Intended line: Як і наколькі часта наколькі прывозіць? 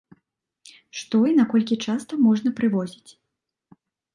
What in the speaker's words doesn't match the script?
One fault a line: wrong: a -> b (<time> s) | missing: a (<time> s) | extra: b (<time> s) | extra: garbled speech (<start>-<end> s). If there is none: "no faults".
wrong: Як -> Што (1.0 s)
wrong: наколькі -> можна (2.3 s)